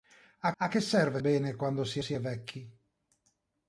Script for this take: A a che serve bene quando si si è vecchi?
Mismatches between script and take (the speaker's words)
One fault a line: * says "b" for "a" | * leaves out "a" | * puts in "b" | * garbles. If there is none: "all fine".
all fine